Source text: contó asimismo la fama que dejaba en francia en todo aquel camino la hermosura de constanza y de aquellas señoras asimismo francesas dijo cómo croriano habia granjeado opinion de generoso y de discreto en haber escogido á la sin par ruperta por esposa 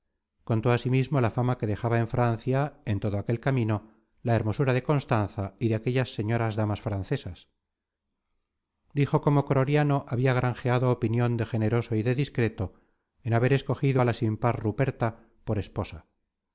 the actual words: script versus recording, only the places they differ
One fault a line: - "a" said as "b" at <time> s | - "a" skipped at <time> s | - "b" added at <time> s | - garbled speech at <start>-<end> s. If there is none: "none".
- "asimismo" said as "damas" at 6.6 s